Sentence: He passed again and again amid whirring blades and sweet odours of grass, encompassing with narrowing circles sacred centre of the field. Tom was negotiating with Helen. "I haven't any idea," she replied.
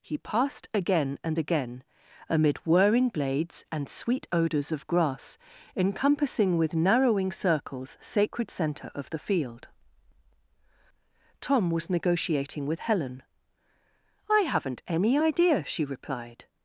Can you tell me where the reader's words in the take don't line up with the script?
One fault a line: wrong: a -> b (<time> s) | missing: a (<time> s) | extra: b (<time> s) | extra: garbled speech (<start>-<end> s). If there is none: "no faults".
no faults